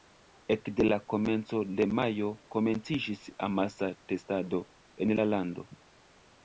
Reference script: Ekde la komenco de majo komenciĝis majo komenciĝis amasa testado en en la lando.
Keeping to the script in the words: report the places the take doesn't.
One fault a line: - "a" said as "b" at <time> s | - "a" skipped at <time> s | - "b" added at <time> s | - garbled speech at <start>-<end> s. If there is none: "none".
- "majo komenciĝis" skipped at 3.3 s
- "en" skipped at 5.2 s